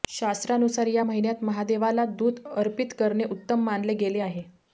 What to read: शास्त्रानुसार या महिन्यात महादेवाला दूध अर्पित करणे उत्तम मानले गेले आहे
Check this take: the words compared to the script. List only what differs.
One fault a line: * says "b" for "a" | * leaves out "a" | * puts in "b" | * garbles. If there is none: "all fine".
all fine